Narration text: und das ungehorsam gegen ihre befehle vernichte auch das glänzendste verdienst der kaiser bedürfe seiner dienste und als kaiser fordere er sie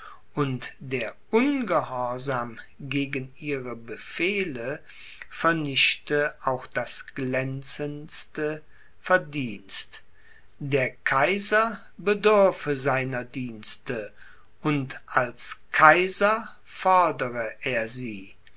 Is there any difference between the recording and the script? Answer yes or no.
yes